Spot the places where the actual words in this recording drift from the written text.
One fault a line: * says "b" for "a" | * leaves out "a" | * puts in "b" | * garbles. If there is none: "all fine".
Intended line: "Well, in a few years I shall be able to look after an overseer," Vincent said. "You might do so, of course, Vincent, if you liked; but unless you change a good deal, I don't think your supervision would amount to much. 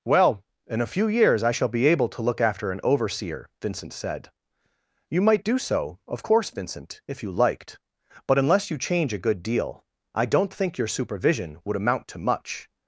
all fine